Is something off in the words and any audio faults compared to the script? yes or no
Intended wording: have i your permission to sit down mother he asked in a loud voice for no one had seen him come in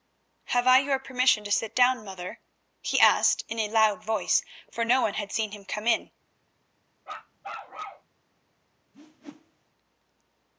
yes